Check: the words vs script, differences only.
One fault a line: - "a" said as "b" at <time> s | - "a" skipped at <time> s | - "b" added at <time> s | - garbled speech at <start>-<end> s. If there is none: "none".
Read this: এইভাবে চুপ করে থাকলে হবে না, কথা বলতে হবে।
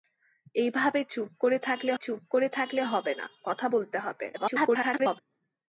- "চুপ করে থাকলে" added at 1.9 s
- garbled speech at 4.3-5.2 s